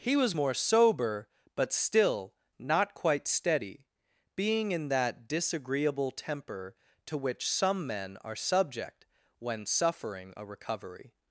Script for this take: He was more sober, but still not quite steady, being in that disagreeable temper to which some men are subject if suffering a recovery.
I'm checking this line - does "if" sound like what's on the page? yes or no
no